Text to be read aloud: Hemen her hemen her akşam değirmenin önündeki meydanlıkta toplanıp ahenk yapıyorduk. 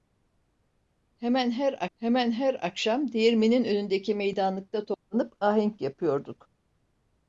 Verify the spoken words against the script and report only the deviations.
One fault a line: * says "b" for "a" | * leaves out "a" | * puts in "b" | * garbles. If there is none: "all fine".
all fine